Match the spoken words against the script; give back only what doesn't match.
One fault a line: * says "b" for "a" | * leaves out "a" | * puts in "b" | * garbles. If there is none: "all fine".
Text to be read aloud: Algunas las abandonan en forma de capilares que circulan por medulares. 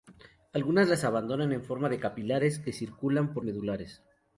all fine